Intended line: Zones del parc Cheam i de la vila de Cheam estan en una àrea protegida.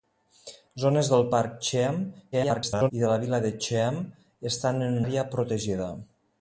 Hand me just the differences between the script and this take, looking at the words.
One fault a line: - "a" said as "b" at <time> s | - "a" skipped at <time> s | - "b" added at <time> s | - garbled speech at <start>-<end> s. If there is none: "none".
- garbled speech at 2.3-2.9 s
- "una" skipped at 5.0 s